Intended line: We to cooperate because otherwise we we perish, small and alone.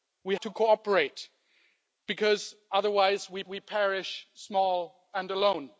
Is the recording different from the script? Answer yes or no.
no